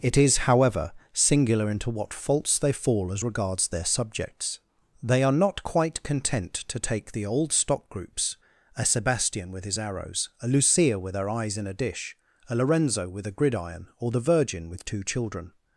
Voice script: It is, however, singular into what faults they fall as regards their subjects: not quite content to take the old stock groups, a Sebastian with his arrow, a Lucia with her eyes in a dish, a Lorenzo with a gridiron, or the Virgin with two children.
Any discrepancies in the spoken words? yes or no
yes